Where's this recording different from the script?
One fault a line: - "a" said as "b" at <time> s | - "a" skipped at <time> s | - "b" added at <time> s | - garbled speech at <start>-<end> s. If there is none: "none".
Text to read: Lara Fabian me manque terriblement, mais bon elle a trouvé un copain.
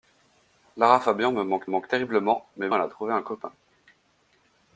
- "manque" added at 1.6 s
- "bon" skipped at 2.7 s